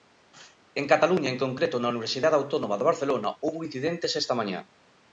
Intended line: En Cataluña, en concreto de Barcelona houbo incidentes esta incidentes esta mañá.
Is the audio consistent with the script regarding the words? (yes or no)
no